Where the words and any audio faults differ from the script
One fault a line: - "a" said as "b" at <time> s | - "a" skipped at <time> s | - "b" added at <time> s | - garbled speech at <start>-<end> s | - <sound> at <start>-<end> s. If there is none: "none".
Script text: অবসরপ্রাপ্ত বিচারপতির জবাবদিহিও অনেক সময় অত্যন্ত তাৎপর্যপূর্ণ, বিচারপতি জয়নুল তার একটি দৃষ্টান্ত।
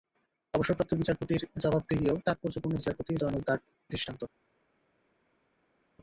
- "অনেক সময় অত্যন্ত" skipped at 2.1 s
- "একটি" skipped at 3.6 s